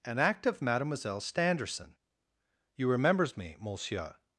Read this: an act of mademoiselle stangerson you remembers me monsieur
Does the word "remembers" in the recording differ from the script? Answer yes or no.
no